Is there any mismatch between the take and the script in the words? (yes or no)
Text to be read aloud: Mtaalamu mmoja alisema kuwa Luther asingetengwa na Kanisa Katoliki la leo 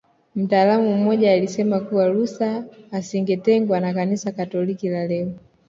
no